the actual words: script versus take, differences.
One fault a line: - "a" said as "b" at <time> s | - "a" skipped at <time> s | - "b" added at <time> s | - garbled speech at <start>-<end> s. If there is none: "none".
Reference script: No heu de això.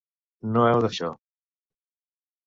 none